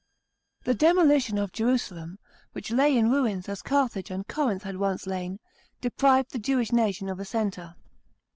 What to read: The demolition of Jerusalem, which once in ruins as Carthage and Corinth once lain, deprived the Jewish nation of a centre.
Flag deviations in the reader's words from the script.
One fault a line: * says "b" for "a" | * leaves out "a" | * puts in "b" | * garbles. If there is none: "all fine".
* says "lay" for "once"
* puts in "had"